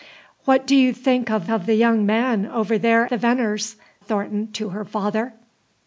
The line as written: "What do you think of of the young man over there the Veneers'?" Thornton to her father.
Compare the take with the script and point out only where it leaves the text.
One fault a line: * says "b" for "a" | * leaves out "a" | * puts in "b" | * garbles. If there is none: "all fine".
all fine